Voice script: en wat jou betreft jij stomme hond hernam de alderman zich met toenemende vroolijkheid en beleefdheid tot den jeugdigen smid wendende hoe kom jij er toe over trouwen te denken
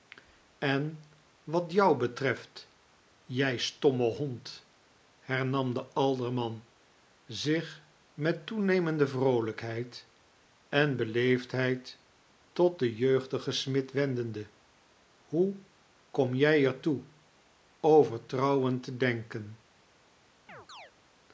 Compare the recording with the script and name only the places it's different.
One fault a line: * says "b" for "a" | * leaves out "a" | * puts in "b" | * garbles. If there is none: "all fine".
all fine